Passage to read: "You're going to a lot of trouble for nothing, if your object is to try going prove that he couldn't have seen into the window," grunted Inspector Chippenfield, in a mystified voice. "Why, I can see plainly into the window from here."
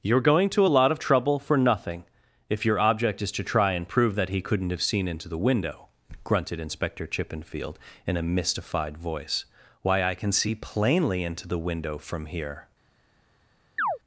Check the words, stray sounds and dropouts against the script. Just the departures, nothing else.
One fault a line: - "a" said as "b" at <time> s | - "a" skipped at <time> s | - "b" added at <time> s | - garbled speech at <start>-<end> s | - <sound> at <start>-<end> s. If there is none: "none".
- "going" said as "and" at 3.7 s
- chirp at 13.8-14.0 s